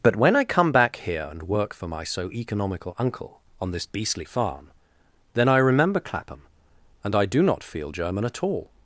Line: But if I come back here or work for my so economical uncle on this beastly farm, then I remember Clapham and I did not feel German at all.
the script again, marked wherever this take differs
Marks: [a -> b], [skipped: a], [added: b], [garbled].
But [if -> when] I come back here [or -> and] work for my so economical uncle on this beastly farm, then I remember Clapham and I [did -> do] not feel German at all.